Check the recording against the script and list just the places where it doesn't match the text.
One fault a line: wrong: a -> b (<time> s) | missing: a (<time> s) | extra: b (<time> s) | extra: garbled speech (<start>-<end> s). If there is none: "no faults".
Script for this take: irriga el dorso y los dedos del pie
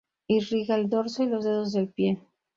no faults